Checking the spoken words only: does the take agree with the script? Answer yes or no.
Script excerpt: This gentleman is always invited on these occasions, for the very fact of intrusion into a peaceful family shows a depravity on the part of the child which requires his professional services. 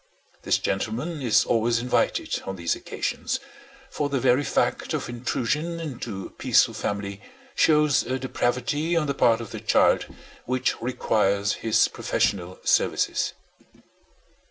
yes